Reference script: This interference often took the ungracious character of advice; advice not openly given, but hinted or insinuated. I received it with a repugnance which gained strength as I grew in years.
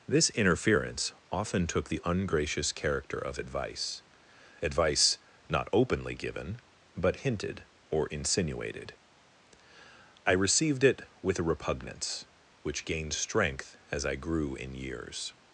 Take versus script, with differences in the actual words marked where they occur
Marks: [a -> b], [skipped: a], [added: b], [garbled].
This interference often took the ungracious character of advice; advice not openly given, but hinted or insinuated. I received it with a repugnance which gained strength as I grew in years.